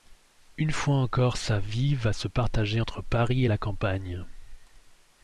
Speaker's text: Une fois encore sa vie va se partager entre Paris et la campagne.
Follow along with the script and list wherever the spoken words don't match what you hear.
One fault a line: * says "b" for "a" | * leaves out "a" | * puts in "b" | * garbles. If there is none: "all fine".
all fine